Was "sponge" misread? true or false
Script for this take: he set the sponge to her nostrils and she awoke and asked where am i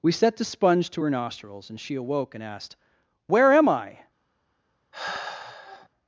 false